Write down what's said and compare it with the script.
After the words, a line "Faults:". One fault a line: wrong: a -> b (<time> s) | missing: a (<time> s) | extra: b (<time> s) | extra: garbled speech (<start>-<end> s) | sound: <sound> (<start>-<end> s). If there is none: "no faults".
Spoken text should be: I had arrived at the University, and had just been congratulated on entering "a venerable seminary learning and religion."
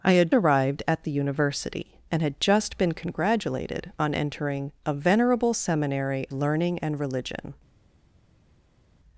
I had arrived at the University, and had just been congratulated on entering "a venerable seminary learning and religion."
Faults:
no faults